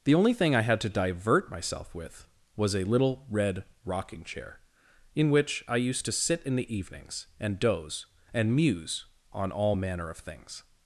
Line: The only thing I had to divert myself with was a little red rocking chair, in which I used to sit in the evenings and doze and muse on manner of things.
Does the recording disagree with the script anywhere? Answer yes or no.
yes